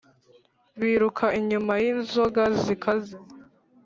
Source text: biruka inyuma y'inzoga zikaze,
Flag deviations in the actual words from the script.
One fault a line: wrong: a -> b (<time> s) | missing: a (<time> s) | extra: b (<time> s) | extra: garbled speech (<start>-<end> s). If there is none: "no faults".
no faults